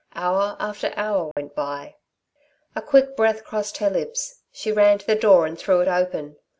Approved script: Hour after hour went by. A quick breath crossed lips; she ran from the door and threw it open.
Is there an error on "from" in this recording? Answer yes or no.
yes